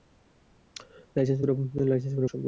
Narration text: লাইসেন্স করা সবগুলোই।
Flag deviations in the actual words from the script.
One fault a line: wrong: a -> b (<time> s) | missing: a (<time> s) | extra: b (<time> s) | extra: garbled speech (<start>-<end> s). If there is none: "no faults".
no faults